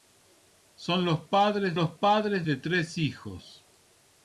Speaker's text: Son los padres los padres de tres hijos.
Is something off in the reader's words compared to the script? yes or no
no